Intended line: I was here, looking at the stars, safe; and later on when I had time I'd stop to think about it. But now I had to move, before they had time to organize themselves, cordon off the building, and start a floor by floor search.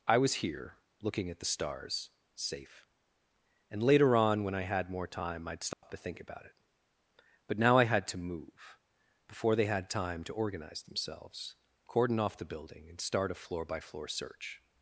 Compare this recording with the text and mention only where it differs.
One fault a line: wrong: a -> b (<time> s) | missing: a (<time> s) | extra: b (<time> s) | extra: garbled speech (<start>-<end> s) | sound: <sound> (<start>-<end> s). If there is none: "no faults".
extra: more (4.9 s)
sound: dropout (5.7-5.8 s)